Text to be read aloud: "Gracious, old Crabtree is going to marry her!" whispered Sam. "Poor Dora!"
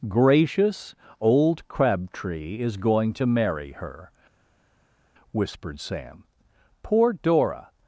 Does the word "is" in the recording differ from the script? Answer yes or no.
no